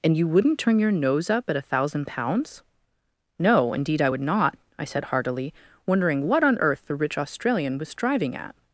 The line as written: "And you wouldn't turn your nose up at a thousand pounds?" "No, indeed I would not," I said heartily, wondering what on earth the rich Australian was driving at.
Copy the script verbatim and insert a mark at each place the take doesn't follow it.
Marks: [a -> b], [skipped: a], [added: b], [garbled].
"And you wouldn't turn your nose up at a thousand pounds?" "No, indeed I would not," I said heartily, wondering what on earth the rich Australian was driving at.